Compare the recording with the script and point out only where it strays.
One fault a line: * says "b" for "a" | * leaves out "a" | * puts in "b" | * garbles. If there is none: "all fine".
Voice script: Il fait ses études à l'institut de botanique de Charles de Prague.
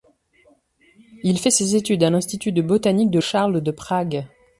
all fine